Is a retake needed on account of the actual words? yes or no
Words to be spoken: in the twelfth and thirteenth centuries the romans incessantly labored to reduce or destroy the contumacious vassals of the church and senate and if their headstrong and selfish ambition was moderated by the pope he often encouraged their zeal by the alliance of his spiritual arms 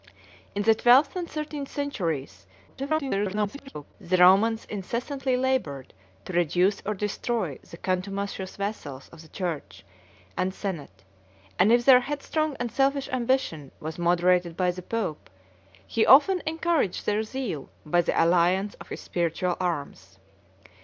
yes